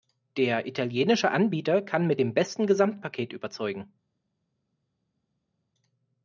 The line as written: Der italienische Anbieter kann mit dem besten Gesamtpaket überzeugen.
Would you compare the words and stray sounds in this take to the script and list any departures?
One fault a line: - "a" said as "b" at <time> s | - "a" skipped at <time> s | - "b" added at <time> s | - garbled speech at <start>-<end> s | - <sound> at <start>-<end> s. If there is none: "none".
none